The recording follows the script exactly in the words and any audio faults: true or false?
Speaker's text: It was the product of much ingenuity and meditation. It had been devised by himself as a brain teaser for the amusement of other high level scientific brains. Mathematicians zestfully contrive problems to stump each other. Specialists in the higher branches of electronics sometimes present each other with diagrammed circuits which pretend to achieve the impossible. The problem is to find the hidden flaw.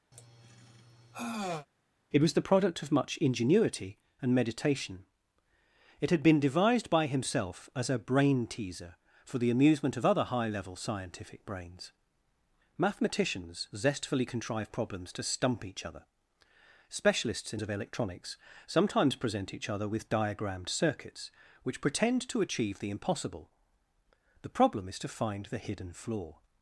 false